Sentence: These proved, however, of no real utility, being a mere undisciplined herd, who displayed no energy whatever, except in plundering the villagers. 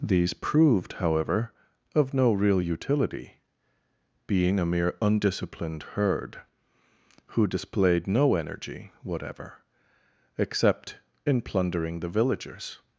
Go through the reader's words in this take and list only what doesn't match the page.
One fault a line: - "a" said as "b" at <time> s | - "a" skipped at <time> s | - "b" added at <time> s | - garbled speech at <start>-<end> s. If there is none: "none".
none